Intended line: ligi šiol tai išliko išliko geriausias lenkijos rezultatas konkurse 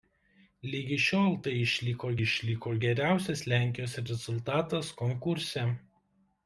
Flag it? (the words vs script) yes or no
no